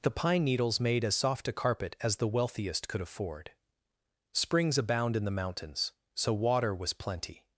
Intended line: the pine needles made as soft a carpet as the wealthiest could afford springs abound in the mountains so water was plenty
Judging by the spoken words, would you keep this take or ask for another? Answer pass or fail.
pass